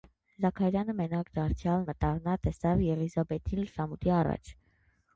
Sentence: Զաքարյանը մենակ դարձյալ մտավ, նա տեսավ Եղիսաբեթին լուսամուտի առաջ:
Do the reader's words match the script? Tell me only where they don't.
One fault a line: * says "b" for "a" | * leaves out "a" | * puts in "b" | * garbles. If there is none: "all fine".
all fine